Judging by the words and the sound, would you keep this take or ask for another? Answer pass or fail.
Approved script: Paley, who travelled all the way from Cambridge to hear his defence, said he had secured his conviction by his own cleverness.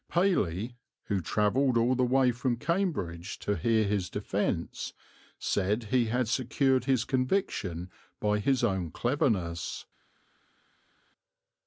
pass